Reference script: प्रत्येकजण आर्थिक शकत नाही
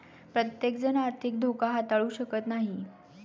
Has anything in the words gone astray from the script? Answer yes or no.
yes